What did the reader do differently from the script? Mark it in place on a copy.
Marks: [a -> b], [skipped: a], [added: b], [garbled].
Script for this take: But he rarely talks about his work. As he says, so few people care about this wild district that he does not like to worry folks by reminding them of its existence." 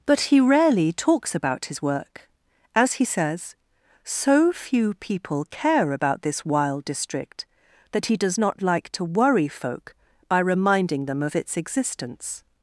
But he rarely talks about his work. As he says, so few people care about this wild district that he does not like to worry [folks -> folk] by reminding them of its existence."